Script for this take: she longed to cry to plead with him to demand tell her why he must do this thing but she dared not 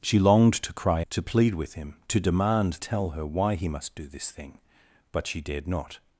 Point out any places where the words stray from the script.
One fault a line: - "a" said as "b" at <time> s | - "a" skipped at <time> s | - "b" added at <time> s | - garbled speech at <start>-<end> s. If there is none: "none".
none